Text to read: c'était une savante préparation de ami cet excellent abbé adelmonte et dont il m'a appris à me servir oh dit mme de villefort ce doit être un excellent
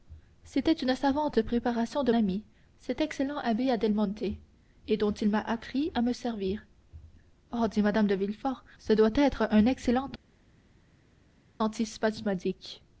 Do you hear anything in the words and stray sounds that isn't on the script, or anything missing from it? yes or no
no